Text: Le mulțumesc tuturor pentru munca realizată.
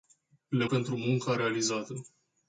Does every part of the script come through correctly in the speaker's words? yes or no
no